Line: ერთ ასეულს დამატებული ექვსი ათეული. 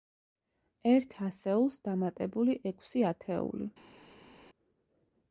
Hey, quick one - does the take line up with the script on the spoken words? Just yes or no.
yes